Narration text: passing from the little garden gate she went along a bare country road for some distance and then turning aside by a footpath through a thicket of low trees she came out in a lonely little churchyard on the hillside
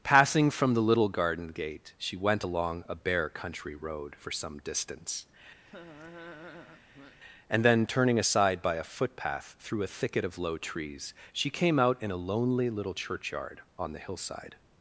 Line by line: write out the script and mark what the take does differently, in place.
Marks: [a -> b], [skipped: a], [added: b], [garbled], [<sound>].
passing from the little garden gate she went along a bare country road for some distance [laugh] and then turning aside by a footpath through a thicket of low trees she came out in a lonely little churchyard on the hillside